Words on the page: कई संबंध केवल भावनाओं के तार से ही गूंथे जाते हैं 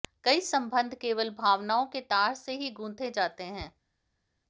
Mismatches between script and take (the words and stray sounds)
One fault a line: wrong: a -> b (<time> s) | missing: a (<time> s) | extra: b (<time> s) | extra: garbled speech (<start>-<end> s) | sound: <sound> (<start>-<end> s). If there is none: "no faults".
no faults